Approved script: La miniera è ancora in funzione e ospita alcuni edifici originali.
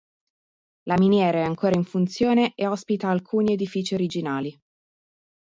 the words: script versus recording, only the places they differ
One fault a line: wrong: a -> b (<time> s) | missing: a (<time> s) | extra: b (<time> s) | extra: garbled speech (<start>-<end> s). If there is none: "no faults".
no faults